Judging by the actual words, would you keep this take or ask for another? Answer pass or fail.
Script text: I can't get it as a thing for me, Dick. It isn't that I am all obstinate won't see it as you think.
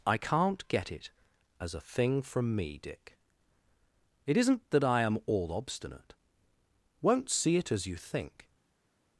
fail